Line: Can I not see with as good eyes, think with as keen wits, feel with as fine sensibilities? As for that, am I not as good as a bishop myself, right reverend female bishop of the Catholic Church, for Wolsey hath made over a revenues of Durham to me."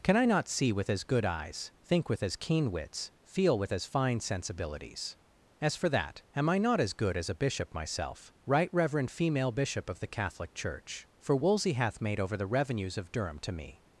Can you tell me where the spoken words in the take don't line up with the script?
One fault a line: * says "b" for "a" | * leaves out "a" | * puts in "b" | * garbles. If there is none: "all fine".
* says "the" for "a"